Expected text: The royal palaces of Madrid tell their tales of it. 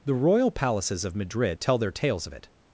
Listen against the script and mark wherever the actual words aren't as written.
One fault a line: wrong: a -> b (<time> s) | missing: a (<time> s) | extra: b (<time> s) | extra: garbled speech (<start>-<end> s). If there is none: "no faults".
no faults